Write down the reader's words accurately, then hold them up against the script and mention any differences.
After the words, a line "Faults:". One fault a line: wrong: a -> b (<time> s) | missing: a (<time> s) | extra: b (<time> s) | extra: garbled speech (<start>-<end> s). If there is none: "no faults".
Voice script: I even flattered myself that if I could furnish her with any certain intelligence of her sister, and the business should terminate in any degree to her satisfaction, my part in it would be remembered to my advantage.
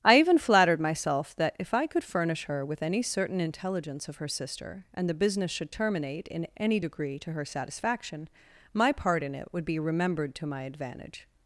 I even flattered myself that if I could furnish her with any certain intelligence of her sister, and the business should terminate in any degree to her satisfaction, my part in it would be remembered to my advantage.
Faults:
no faults